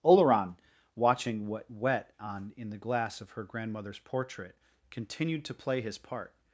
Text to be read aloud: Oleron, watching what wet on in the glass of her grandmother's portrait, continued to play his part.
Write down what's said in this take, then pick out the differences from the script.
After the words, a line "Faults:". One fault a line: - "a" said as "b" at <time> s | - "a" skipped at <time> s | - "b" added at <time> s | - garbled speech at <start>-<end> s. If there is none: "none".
Oleron, watching what wet on in the glass of her grandmother's portrait, continued to play his part.
Faults:
none